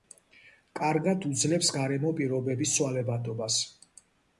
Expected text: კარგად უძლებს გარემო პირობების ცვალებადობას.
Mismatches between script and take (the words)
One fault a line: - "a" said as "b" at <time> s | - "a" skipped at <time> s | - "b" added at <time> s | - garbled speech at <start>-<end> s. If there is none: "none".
none